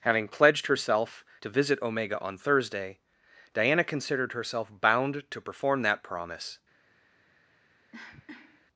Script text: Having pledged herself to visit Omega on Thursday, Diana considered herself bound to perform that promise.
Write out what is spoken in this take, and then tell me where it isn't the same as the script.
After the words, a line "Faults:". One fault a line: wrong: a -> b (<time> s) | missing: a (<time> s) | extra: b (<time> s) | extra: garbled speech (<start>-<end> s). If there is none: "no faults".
Having pledged herself to visit Omega on Thursday, Diana considered herself bound to perform that promise.
Faults:
no faults